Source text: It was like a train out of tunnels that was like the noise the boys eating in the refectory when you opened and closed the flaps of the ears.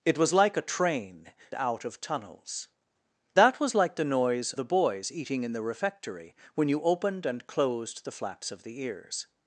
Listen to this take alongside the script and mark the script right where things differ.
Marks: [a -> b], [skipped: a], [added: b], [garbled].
It was like a train out of tunnels that was like the noise the boys eating in the refectory when you opened and closed the flaps of the ears.